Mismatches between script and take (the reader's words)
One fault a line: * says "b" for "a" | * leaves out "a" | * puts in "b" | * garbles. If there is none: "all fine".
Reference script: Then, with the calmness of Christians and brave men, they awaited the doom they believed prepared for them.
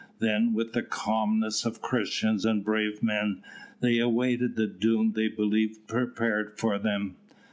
all fine